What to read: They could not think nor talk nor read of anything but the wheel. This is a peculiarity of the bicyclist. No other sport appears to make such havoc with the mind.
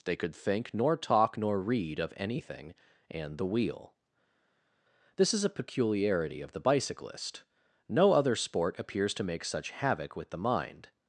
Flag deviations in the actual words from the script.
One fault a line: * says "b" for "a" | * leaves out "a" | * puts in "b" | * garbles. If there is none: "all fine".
* leaves out "not"
* says "and" for "but"